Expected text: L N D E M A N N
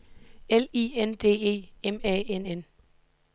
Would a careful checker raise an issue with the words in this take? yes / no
yes